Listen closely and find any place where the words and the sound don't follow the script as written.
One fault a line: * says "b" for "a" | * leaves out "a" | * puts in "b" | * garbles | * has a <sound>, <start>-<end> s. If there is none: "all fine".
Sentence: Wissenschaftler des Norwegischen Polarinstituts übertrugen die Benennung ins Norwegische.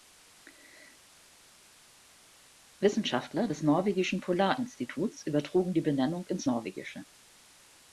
all fine